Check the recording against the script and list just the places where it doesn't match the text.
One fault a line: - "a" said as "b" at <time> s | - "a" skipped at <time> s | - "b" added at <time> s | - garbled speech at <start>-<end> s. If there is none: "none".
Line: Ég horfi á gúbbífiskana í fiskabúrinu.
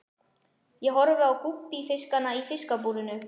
none